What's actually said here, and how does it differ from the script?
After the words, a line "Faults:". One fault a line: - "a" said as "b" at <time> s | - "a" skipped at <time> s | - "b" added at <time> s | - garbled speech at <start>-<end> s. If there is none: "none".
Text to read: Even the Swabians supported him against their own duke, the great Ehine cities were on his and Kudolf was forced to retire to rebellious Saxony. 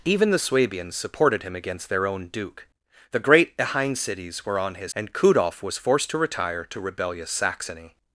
Even the Swabians supported him against their own duke, the great Ehine cities were on his and Kudolf was forced to retire to rebellious Saxony.
Faults:
none